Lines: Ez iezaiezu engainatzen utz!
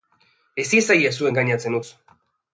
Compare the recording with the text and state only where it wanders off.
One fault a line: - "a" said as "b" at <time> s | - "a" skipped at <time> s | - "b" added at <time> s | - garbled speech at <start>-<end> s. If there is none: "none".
none